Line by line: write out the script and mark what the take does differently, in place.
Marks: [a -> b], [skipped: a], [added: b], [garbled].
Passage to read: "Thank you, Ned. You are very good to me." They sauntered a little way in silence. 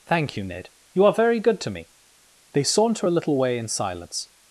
"Thank you, Ned. You are very good to me." They [sauntered -> saunter] a little way in silence.